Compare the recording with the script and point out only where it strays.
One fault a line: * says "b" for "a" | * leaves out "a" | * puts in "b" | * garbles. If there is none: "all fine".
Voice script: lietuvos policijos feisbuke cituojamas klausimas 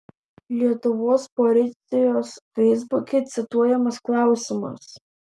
all fine